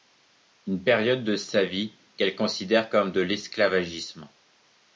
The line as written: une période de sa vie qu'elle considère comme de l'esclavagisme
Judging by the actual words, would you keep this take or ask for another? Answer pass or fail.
pass